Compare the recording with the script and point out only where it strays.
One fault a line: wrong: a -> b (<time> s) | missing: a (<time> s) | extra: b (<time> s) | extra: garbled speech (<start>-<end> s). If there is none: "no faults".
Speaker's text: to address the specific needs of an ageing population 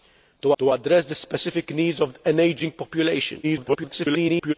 extra: to (0.6 s)
extra: garbled speech (3.4-4.5 s)